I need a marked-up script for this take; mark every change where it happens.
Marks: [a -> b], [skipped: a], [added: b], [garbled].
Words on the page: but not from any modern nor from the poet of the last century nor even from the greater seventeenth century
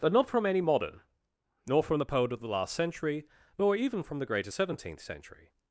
but not from any modern nor from the poet of the last century nor even from the greater seventeenth century